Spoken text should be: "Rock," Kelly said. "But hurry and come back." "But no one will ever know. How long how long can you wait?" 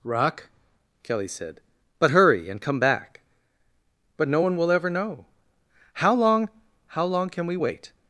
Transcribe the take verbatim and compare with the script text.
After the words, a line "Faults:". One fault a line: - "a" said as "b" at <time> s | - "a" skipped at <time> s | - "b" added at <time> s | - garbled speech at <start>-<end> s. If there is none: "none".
"Rock," Kelly said. "But hurry and come back." "But no one will ever know. How long how long can we wait?"
Faults:
- "you" said as "we" at 7.5 s